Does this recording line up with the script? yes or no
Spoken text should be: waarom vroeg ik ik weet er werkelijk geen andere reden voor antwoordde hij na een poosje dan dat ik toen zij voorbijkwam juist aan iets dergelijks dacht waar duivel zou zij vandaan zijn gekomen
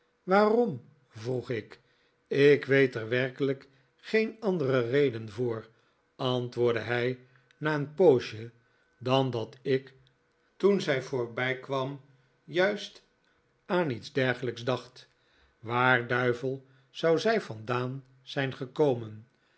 yes